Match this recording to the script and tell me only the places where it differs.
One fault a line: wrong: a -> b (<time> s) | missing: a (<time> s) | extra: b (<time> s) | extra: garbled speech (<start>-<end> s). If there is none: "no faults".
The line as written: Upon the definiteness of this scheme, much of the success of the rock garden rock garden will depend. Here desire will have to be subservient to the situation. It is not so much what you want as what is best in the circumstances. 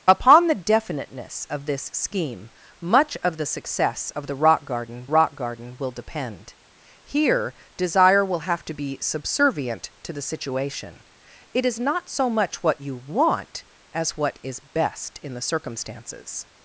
no faults